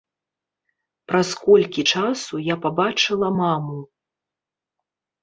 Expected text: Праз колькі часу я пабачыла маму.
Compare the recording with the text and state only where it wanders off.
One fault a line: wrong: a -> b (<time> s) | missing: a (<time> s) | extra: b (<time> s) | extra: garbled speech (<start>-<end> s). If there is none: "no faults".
no faults